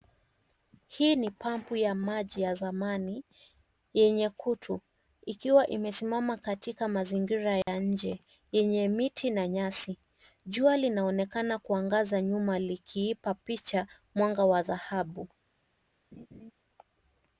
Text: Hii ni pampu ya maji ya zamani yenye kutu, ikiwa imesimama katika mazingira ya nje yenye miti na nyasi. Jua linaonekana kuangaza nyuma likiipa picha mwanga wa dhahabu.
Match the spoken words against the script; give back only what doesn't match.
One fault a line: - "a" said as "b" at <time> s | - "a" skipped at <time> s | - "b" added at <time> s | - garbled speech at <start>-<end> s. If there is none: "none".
none